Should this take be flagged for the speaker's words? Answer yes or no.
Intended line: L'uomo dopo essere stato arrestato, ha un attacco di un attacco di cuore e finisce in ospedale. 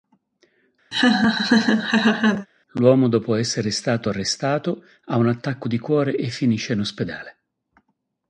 yes